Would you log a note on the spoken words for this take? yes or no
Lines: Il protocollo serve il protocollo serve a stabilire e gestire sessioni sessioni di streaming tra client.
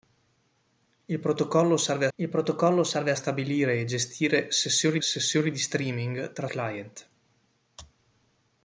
no